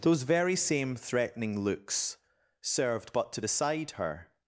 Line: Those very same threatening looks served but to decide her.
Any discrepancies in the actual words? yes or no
no